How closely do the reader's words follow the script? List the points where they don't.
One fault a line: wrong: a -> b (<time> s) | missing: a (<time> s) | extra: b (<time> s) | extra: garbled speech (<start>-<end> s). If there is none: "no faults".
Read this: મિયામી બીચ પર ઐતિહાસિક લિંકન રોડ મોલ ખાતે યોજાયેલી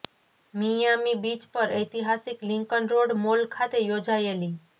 no faults